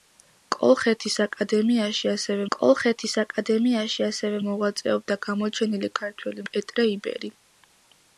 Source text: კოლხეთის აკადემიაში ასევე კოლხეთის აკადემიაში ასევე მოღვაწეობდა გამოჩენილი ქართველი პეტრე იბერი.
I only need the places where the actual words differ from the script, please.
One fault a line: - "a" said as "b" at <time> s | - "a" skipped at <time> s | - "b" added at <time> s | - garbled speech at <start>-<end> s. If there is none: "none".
none